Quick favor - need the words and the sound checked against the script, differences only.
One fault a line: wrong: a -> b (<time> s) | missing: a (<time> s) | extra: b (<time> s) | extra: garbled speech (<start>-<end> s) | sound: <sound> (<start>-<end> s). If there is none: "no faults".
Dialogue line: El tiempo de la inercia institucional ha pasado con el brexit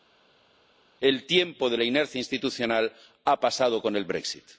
no faults